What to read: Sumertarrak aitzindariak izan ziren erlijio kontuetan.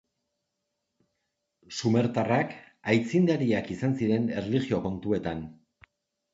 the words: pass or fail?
pass